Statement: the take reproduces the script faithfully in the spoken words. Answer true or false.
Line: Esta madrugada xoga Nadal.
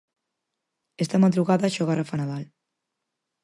false